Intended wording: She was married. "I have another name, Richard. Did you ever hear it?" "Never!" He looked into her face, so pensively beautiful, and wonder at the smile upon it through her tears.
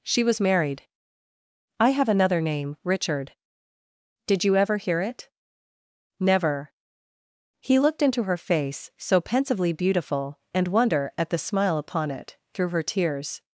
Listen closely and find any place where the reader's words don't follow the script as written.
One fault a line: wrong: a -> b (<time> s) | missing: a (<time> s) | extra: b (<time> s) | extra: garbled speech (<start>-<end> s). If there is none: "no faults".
no faults